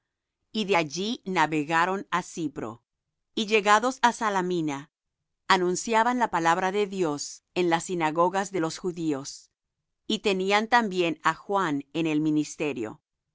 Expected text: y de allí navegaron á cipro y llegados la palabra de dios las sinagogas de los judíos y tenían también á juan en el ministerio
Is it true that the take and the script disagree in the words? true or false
true